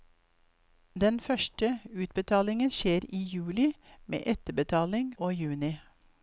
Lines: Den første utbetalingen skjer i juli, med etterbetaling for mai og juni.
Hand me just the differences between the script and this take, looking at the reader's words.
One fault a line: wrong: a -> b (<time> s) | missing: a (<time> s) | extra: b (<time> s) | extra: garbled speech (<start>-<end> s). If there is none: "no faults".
missing: for mai (5.1 s)